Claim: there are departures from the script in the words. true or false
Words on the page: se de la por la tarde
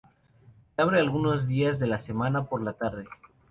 true